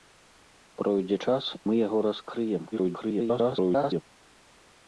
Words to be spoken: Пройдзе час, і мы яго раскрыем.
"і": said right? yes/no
no